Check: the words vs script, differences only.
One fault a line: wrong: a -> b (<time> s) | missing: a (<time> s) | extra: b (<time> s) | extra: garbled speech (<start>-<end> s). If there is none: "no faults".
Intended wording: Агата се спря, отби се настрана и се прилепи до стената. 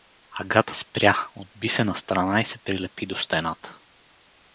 missing: се (0.8 s)